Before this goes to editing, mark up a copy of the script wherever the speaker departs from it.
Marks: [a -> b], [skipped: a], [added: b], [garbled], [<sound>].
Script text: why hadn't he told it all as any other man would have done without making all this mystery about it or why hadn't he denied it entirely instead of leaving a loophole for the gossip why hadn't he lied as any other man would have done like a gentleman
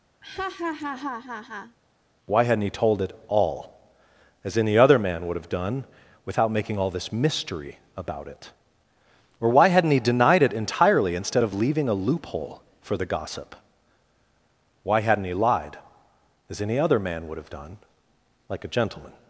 [laugh] why hadn't he told it all as any other man would have done without making all this mystery about it or why hadn't he denied it entirely instead of leaving a loophole for the gossip why hadn't he lied as any other man would have done like a gentleman